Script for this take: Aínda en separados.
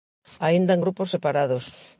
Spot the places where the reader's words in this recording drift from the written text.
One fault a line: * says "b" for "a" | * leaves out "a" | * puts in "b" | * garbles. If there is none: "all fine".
* puts in "grupos"